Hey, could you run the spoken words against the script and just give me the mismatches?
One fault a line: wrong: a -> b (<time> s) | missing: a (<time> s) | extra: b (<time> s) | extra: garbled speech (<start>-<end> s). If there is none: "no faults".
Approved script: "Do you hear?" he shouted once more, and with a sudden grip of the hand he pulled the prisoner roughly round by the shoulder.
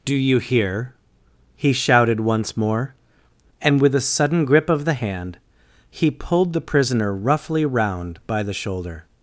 no faults